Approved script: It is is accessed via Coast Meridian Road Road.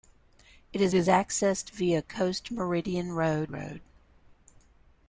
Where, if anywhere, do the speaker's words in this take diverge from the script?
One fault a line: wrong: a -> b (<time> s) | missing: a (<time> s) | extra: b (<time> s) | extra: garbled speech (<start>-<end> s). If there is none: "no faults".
no faults